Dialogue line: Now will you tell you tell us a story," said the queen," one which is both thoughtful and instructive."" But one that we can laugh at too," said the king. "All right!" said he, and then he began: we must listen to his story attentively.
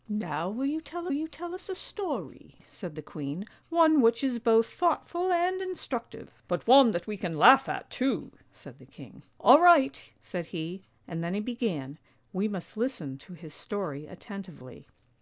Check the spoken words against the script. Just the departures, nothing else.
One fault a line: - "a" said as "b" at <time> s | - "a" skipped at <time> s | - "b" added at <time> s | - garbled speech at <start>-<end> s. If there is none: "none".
none